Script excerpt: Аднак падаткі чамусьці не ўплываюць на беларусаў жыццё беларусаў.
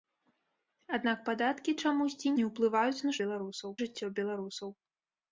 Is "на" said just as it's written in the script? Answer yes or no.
yes